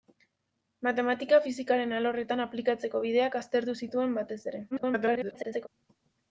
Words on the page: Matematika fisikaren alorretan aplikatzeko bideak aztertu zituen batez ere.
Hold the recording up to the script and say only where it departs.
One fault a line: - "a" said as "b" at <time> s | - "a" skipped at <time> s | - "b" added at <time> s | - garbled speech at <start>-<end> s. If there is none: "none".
- garbled speech at 4.7-5.7 s